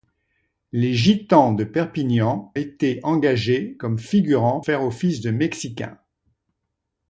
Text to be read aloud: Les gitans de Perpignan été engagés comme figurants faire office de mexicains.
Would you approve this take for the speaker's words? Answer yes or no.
yes